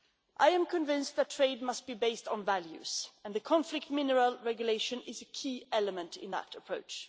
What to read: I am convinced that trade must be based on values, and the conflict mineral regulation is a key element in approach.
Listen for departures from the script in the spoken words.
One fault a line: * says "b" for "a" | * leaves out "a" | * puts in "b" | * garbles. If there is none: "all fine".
* puts in "that"